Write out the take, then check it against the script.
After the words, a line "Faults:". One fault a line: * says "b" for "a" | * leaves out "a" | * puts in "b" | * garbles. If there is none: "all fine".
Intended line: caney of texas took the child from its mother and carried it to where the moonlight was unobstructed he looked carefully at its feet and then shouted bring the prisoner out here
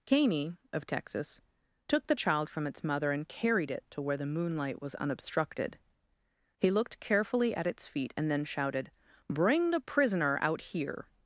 caney of texas took the child from its mother and carried it to where the moonlight was unobstructed he looked carefully at its feet and then shouted bring the prisoner out here
Faults:
all fine